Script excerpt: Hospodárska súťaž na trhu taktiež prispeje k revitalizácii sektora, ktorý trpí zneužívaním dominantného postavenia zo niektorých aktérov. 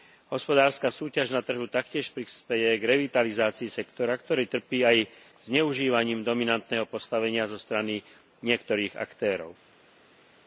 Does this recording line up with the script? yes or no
no